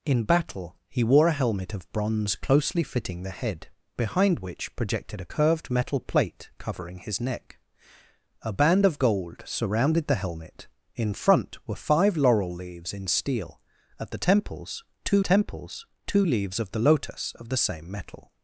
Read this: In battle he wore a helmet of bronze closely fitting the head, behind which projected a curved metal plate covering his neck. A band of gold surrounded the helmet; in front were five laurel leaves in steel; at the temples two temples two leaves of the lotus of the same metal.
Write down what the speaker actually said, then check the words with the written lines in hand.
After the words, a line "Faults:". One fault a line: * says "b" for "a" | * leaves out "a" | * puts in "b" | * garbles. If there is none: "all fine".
In battle he wore a helmet of bronze closely fitting the head, behind which projected a curved metal plate covering his neck. A band of gold surrounded the helmet; in front were five laurel leaves in steel; at the temples two temples two leaves of the lotus of the same metal.
Faults:
all fine